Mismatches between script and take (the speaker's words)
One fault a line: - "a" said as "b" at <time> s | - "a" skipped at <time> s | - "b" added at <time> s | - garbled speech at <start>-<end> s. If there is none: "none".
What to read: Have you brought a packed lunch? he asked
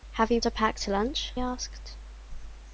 - "brought" skipped at 0.4 s
- "he" skipped at 1.3 s